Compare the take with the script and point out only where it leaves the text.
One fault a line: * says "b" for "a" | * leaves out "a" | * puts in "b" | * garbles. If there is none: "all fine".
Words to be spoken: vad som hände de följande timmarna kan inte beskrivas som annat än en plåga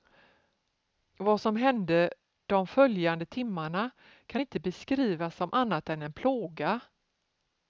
all fine